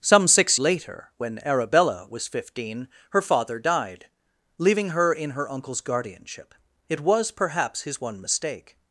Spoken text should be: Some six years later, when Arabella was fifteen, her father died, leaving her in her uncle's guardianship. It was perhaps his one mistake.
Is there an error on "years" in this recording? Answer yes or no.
yes